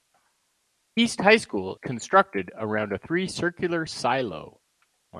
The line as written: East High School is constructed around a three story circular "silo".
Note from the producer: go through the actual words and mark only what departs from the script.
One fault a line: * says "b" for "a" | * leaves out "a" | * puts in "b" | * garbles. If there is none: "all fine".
* leaves out "is"
* leaves out "story"